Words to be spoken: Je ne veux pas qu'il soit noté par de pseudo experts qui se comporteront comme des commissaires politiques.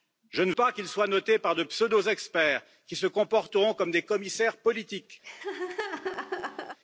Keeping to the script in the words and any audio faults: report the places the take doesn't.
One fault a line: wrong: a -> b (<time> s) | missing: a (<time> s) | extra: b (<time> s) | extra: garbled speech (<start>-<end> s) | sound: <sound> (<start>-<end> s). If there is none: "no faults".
missing: veux (0.5 s)
sound: laugh (5.2-6.8 s)